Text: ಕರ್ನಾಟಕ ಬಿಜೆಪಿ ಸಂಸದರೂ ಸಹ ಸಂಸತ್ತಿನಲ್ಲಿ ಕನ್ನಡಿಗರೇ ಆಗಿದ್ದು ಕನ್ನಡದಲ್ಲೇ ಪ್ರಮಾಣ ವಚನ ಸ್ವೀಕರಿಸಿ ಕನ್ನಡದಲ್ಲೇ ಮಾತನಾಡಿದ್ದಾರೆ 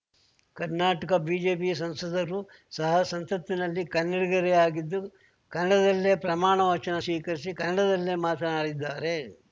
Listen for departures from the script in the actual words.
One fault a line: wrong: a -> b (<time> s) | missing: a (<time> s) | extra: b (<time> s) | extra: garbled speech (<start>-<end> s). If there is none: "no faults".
no faults